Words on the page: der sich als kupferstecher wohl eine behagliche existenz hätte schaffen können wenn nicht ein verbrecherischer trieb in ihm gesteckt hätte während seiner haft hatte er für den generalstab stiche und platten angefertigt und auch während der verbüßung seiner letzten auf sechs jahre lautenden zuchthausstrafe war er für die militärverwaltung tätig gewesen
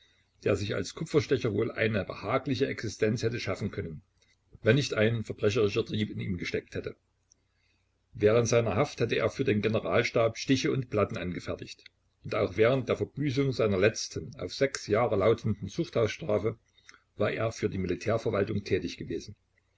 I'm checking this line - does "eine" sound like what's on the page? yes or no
yes